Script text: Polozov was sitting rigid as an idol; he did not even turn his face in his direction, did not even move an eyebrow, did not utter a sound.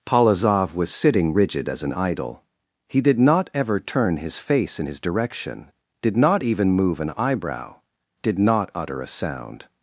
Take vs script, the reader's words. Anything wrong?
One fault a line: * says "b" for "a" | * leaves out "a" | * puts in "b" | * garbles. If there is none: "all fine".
* says "ever" for "even"